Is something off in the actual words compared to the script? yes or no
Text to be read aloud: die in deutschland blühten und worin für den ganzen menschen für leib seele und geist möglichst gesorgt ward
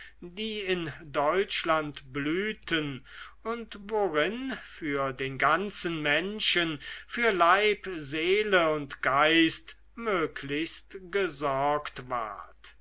no